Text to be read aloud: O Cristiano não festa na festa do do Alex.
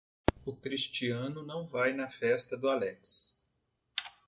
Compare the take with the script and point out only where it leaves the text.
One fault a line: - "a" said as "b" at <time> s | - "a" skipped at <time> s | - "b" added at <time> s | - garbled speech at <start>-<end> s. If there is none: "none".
- "festa" said as "vai" at 1.7 s
- "do" skipped at 2.7 s